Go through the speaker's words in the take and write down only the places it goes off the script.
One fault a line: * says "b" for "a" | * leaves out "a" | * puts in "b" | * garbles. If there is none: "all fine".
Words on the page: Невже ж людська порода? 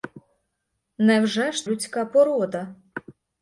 all fine